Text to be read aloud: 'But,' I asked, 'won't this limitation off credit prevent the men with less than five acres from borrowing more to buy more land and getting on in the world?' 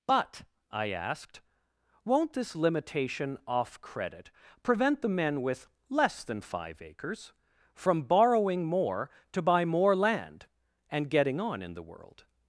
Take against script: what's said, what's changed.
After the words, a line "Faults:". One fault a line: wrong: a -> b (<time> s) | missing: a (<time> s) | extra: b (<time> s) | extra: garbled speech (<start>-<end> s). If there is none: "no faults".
'But,' I asked, 'won't this limitation off credit prevent the men with less than five acres from borrowing more to buy more land and getting on in the world?'
Faults:
no faults